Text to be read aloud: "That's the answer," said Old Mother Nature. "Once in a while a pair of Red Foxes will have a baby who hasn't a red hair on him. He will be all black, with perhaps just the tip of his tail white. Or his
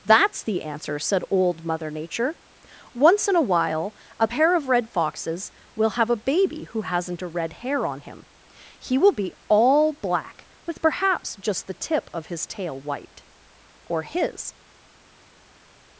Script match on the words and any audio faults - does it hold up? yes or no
yes